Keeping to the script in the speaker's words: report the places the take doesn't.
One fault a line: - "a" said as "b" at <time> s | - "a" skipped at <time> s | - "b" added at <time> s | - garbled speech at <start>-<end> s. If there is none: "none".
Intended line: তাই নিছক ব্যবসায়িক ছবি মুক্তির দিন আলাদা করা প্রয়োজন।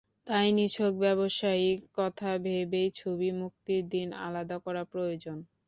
- "কথা ভেবেই" added at 2.0 s